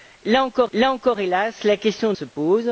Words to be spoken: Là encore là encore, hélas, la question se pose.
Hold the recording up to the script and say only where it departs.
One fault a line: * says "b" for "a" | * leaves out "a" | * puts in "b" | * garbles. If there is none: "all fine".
all fine